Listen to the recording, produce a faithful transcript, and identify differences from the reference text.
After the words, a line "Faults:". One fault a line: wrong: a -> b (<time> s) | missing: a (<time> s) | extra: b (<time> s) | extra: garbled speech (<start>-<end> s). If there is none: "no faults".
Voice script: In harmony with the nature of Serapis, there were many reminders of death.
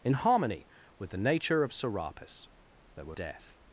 In harmony with the nature of Serapis, there were death.
Faults:
missing: many reminders of (3.2 s)